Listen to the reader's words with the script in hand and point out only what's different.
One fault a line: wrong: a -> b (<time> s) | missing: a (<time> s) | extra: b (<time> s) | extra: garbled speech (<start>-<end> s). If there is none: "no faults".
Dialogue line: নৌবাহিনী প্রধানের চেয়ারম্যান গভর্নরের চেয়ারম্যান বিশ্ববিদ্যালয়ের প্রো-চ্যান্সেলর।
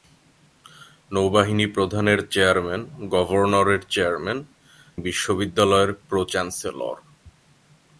no faults